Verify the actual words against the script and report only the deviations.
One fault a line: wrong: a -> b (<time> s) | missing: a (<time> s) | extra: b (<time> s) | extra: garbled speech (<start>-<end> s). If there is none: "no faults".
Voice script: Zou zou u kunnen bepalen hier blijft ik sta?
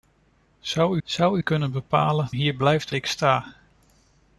no faults